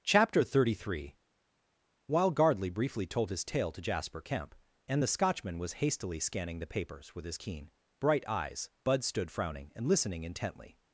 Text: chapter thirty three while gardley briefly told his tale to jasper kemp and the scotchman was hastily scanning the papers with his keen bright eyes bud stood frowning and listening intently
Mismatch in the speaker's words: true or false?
false